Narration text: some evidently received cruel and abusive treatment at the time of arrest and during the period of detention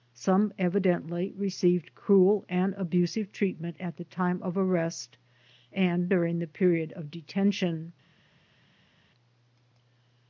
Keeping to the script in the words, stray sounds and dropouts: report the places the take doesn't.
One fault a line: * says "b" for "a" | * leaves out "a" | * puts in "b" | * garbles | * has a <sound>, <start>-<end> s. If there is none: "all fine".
all fine